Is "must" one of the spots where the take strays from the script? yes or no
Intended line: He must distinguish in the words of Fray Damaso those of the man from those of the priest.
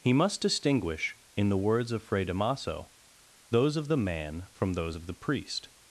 no